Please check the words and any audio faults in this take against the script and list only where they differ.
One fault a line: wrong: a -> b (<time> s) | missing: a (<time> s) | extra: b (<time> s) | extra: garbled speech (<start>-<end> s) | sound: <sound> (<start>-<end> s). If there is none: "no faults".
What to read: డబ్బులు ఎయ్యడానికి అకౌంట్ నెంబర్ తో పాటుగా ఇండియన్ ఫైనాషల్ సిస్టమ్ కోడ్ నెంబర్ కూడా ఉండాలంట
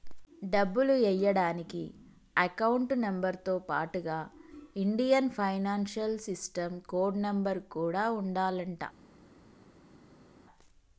no faults